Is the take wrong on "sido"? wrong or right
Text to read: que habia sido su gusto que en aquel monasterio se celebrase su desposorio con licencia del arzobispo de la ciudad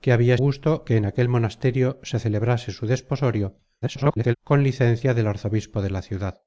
wrong